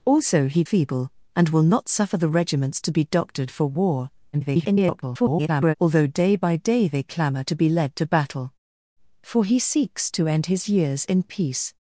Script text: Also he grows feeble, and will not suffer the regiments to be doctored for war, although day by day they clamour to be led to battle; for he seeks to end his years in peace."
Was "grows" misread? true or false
true